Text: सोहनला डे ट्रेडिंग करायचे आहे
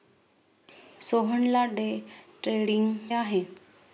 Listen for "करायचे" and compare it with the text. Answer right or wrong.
wrong